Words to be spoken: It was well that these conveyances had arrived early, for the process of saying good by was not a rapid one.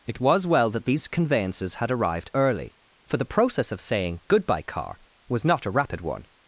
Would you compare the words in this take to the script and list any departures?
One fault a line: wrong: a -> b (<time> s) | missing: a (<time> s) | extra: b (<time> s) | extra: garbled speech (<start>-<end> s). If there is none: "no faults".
wrong: good by -> goodbye car (4.3 s)